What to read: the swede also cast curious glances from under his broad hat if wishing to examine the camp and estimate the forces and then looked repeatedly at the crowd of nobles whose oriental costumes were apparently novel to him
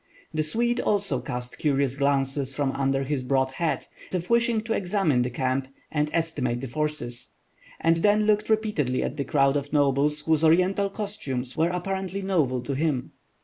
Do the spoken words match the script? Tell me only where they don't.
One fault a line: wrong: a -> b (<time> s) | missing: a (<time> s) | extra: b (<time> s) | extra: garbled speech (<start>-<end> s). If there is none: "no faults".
no faults